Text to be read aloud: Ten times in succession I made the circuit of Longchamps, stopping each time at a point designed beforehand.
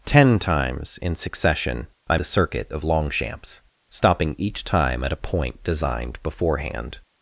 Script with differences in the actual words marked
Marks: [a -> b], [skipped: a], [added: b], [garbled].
Ten times in succession I [skipped: made] the circuit of Longchamps, stopping each time at a point designed beforehand.